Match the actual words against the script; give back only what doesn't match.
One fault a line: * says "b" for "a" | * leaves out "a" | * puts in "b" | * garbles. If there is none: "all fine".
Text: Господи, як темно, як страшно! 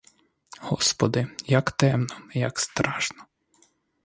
all fine